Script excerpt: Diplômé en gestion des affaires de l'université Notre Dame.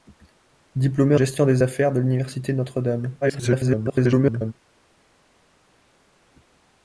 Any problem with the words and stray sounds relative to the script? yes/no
yes